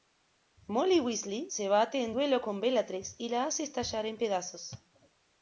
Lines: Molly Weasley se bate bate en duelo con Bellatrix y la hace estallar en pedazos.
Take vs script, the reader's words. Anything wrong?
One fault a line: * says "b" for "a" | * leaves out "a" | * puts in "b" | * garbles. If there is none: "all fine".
* leaves out "bate"